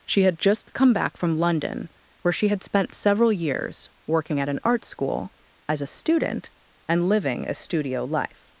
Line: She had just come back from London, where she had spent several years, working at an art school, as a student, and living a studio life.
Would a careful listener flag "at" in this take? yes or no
no